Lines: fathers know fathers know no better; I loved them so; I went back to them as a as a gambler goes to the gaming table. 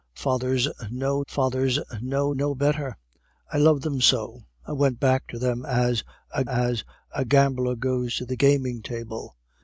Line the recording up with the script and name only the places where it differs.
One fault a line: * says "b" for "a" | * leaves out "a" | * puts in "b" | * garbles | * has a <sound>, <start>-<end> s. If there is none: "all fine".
all fine